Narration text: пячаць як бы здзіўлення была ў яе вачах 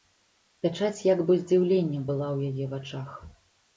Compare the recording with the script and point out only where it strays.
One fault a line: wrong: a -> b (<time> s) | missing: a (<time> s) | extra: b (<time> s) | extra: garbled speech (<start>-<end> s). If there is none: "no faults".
no faults